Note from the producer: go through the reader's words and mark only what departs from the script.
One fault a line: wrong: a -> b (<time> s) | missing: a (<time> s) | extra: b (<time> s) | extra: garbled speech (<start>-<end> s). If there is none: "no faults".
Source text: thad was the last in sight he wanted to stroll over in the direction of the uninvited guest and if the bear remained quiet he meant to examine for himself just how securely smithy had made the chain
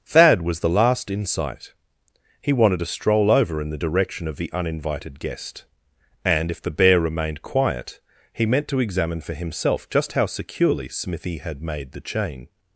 no faults